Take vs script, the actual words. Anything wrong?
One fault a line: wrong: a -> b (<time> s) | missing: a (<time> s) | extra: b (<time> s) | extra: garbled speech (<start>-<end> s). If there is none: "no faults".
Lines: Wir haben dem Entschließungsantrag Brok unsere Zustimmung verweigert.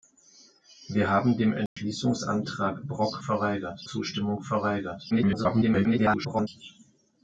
wrong: unsere -> verweigert (3.2 s)
extra: garbled speech (5.1-6.5 s)